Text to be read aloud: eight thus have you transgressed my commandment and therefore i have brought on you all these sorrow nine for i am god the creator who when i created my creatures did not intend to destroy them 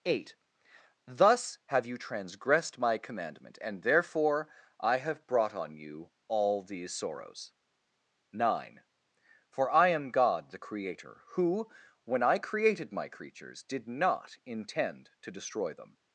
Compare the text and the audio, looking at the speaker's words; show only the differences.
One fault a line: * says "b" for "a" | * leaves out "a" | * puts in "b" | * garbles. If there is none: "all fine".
* says "sorrows" for "sorrow"